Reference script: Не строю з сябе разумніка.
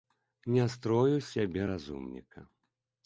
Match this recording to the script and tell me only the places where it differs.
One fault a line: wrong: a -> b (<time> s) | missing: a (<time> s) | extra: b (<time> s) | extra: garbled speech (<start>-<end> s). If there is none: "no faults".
no faults